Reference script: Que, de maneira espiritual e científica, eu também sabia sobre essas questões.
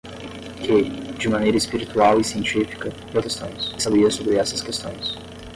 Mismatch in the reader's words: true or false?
true